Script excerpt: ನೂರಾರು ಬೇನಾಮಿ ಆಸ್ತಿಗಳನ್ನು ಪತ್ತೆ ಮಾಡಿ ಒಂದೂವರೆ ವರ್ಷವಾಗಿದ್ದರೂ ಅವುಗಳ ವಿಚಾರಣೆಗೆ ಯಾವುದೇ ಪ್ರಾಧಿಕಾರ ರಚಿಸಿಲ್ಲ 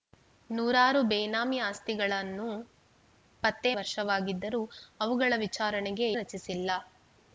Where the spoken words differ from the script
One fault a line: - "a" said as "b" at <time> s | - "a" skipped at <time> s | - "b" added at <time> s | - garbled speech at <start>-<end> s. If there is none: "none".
- "ಮಾಡಿ ಒಂದೂವರೆ" skipped at 3.7 s
- "ಯಾವುದೇ ಪ್ರಾಧಿಕಾರ" skipped at 6.1 s